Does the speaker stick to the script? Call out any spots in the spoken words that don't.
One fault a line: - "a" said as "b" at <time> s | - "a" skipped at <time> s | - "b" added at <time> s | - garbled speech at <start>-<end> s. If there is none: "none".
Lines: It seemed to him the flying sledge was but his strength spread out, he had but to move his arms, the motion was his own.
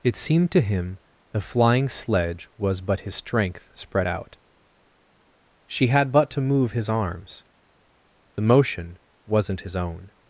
- "he" said as "she" at 5.7 s
- "was" said as "wasn't" at 9.3 s